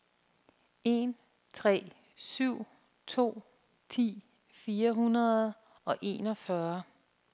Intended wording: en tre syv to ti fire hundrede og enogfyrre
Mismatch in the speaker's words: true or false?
false